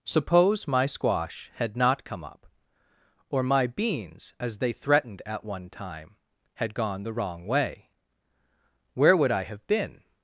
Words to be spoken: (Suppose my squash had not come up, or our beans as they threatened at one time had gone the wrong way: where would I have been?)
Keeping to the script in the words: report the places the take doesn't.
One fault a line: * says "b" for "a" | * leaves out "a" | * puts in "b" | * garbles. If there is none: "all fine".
* says "my" for "our"